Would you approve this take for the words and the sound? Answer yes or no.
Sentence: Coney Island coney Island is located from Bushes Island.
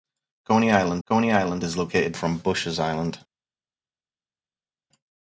yes